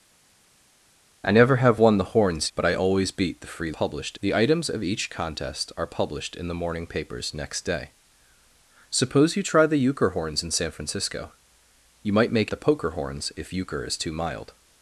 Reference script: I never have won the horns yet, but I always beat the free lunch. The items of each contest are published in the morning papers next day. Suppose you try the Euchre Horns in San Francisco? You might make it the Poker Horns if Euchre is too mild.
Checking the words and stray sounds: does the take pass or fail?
fail